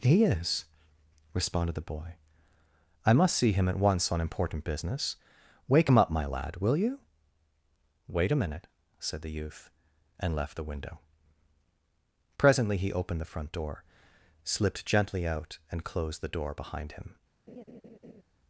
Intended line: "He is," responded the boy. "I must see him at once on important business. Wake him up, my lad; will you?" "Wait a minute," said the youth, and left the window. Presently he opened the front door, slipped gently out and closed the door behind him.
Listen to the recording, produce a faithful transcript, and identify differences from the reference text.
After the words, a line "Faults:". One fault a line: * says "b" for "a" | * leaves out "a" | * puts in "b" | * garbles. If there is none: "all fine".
"He is," responded the boy. "I must see him at once on important business. Wake him up, my lad; will you?" "Wait a minute," said the youth, and left the window. Presently he opened the front door, slipped gently out and closed the door behind him.
Faults:
all fine